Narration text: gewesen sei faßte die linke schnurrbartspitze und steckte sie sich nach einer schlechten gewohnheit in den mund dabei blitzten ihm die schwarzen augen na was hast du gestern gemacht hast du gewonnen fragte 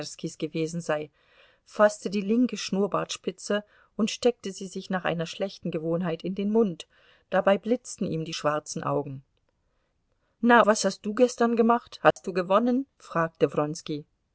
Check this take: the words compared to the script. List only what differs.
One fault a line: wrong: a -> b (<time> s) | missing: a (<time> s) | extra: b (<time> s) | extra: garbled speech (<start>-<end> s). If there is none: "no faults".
no faults